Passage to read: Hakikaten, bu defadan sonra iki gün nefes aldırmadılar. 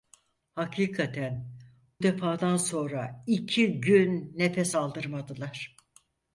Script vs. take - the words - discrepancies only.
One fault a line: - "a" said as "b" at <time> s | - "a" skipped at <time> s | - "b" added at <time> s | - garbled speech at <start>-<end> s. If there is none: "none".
- "bu" skipped at 1.5 s